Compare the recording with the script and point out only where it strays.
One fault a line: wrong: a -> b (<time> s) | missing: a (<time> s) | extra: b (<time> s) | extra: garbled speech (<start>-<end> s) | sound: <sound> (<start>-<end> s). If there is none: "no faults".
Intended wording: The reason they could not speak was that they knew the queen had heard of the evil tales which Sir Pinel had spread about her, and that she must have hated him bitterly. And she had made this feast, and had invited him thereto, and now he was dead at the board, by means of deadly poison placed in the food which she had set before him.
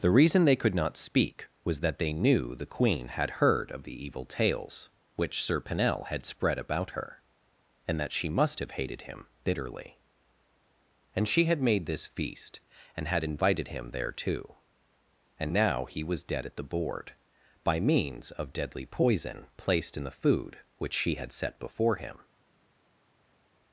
no faults